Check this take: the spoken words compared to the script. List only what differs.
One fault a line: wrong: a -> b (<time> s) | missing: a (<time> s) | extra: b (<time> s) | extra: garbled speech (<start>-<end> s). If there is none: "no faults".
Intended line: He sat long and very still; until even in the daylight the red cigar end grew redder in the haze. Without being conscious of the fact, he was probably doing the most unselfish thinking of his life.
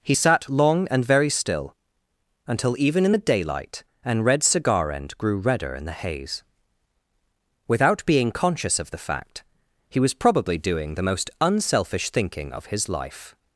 wrong: the -> an (4.0 s)